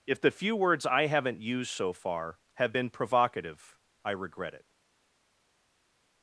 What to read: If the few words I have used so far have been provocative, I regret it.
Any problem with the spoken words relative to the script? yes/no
yes